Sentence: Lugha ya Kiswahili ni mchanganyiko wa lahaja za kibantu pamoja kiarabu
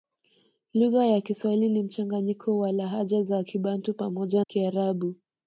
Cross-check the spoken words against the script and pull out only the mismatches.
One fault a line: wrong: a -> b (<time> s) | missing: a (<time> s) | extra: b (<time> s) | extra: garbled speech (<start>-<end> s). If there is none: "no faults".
no faults